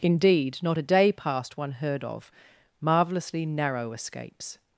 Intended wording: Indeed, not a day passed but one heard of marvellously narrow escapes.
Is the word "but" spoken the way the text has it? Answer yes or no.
no